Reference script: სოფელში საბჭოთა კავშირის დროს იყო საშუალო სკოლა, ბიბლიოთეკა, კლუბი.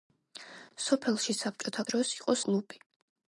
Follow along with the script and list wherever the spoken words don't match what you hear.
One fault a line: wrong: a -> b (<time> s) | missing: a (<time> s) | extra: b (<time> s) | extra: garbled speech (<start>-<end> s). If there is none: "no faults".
missing: კავშირის (1.9 s)
missing: საშუალო სკოლა ბიბლიოთეკა (2.4 s)